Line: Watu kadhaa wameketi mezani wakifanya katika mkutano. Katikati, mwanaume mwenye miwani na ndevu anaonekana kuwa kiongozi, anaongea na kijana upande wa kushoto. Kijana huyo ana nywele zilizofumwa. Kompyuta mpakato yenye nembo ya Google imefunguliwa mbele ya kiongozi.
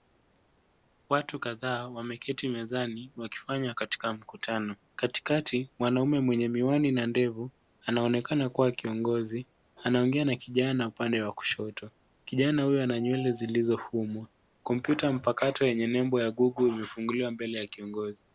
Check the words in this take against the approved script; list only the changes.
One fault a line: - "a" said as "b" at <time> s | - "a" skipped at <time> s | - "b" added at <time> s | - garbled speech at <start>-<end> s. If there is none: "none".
none